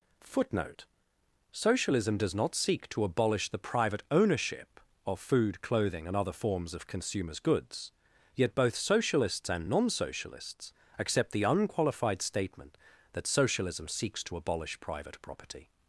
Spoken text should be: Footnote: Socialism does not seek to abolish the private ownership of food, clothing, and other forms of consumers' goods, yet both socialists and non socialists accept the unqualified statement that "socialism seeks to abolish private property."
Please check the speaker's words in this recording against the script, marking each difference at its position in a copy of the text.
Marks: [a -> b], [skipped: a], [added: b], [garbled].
Footnote: Socialism does not seek to abolish the private ownership of food, clothing, and other forms of consumers' goods, yet both socialists and non socialists accept the unqualified statement that "socialism seeks to abolish private property."